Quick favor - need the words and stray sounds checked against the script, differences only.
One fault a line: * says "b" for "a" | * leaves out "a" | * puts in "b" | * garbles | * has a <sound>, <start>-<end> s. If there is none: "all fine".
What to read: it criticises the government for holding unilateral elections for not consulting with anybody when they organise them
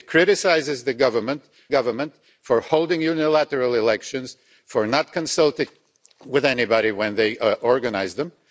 * puts in "government"